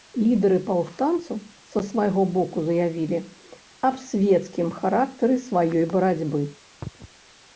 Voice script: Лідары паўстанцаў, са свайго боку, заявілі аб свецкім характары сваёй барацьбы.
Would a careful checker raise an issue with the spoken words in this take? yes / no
no